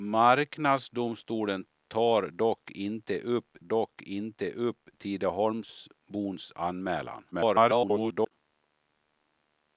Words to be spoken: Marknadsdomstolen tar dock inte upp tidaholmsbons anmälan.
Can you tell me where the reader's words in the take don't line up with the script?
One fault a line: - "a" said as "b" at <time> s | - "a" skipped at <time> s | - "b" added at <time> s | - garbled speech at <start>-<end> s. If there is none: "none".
- "dock inte upp" added at 3.6 s
- garbled speech at 7.3-8.3 s